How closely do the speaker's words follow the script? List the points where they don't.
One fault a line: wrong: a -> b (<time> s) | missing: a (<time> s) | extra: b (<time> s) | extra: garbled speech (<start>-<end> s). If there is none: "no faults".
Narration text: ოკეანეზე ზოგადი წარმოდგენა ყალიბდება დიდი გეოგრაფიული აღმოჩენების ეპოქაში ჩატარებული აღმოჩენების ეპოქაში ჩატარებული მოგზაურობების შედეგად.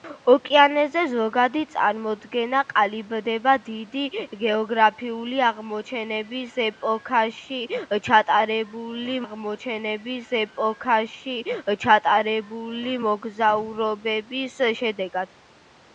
no faults